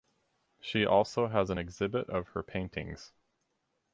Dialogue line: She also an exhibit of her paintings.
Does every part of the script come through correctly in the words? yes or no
no